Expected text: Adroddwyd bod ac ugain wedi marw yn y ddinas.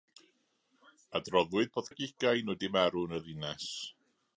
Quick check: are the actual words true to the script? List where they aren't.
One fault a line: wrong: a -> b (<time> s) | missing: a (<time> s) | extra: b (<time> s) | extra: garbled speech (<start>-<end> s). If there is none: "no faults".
no faults